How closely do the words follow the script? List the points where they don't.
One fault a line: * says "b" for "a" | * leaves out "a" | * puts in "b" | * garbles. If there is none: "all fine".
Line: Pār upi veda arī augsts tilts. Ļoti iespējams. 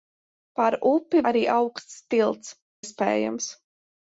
* leaves out "veda"
* leaves out "Ļoti"